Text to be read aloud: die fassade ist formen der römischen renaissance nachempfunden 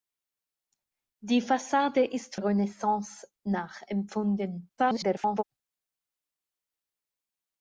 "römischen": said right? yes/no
no